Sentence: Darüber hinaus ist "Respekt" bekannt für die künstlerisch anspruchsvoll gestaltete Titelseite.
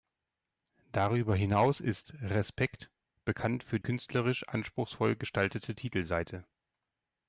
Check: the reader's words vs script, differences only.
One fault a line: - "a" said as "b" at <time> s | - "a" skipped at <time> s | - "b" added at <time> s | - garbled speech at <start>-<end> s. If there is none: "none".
- "die" skipped at 3.8 s